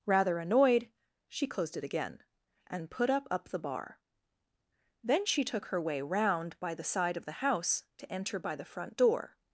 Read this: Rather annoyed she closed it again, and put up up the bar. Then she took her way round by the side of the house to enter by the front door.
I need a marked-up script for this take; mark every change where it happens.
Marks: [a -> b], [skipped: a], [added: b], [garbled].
Rather annoyed she closed it again, and put up up the bar. Then she took her way round by the side of the house to enter by the front door.